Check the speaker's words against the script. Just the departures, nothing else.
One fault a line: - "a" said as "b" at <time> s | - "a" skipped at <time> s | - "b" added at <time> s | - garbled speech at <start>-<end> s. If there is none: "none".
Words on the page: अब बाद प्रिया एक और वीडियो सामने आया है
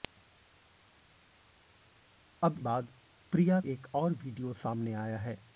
none